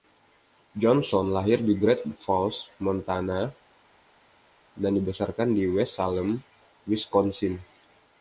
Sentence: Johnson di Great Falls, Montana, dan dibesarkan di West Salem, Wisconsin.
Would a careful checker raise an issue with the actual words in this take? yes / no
yes